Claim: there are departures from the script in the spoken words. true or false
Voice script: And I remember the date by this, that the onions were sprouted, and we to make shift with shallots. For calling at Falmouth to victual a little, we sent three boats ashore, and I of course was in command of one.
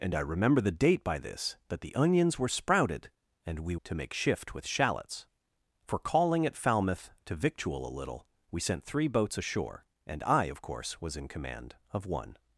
false